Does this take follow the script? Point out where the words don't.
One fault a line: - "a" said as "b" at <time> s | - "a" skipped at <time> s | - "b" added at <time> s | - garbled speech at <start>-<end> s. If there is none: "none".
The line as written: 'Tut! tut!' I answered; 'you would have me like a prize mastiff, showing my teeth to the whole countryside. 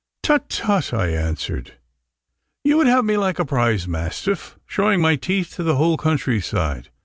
none